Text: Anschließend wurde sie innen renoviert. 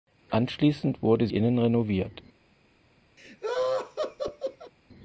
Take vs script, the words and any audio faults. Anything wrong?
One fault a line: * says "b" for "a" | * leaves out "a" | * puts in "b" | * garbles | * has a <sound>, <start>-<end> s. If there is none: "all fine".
* leaves out "sie"
* has a laugh, 3.2-4.7 s